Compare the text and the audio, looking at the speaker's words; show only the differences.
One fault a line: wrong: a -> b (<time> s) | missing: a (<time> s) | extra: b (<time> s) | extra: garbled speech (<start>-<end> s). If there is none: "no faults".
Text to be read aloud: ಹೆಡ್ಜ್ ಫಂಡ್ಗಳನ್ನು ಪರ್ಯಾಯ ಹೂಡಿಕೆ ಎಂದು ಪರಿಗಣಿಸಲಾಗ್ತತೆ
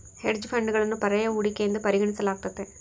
no faults